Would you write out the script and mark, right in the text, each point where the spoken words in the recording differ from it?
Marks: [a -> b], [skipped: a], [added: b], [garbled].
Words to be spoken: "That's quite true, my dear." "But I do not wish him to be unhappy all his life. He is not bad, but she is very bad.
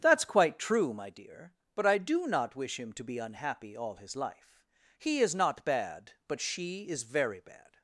"That's quite true, my dear." "But I do not wish him to be unhappy all his life. He is not bad, but she is very bad.